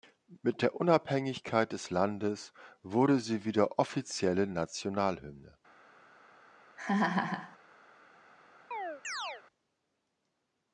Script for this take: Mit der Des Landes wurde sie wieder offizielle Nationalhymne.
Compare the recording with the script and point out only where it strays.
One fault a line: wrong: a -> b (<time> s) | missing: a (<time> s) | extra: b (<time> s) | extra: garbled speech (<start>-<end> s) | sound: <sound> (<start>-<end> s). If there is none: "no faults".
extra: Unabhängigkeit (0.8 s)
sound: laugh (6.8-7.6 s)
sound: chirp (8.7-9.4 s)